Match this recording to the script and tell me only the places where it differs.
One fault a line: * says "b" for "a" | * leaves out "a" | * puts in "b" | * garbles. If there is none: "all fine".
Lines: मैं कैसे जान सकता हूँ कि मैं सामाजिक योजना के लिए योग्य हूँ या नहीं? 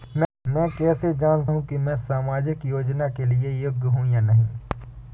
* leaves out "सकता"